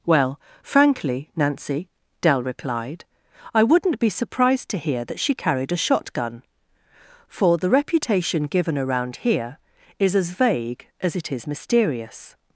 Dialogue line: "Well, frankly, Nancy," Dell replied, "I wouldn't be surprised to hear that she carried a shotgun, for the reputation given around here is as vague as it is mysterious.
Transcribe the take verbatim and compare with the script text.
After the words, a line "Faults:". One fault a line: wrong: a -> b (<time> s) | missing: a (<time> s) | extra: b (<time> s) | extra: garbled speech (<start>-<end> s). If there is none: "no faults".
"Well, frankly, Nancy," Dell replied, "I wouldn't be surprised to hear that she carried a shotgun, for the reputation given around here is as vague as it is mysterious.
Faults:
no faults